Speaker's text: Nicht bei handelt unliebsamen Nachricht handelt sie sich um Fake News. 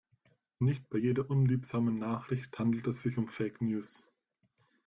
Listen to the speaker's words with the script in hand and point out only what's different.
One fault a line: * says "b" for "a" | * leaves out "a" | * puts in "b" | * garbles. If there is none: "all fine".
* says "jeder" for "handelt"
* says "es" for "sie"